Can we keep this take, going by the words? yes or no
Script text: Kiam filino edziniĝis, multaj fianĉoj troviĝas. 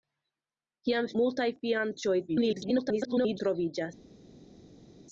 no